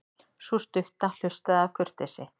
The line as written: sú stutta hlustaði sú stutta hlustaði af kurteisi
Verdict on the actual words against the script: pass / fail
fail